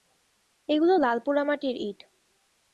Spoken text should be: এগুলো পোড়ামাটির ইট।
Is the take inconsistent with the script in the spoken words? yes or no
yes